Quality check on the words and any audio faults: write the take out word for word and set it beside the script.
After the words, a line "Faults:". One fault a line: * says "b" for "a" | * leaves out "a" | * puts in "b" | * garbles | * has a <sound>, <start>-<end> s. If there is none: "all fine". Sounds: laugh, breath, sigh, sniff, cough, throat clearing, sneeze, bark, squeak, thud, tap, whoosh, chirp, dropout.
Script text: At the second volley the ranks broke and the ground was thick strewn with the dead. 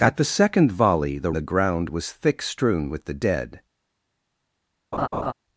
At the second volley the the ground was thick strewn with the dead.
Faults:
* leaves out "ranks broke and"
* has a laugh, 4.9-5.3 s